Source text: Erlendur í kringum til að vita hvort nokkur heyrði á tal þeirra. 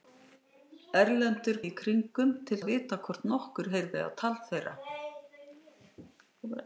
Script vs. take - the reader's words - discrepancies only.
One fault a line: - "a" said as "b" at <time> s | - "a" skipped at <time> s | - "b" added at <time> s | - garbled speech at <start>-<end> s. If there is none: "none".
none